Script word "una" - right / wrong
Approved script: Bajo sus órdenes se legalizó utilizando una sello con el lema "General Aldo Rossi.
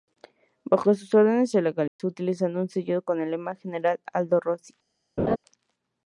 wrong